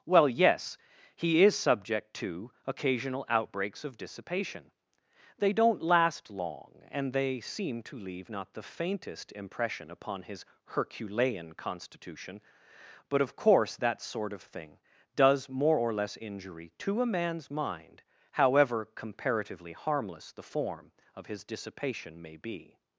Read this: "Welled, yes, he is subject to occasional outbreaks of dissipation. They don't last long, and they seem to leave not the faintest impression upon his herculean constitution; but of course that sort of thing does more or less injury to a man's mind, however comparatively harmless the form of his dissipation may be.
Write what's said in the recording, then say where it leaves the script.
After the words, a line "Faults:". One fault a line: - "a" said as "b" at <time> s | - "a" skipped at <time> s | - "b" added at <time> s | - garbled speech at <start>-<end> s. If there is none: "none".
"Well, yes, he is subject to occasional outbreaks of dissipation. They don't last long, and they seem to leave not the faintest impression upon his herculean constitution; but of course that sort of thing does more or less injury to a man's mind, however comparatively harmless the form of his dissipation may be.
Faults:
- "Welled" said as "Well" at 0.1 s